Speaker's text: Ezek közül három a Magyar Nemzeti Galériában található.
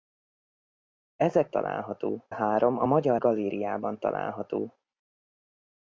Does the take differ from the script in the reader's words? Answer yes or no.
yes